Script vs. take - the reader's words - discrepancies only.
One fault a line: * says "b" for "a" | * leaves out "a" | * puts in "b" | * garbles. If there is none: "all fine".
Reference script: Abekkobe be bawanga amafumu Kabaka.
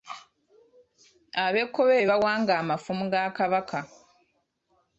* puts in "ga"